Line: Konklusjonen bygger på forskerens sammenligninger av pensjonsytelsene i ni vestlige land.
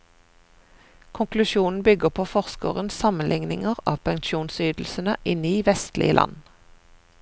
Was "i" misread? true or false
false